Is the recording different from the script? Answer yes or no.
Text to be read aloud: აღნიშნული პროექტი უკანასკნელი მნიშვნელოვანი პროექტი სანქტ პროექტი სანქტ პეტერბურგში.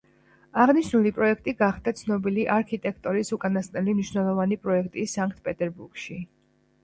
yes